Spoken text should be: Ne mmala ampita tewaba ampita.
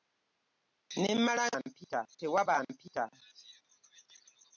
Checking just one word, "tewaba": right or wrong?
right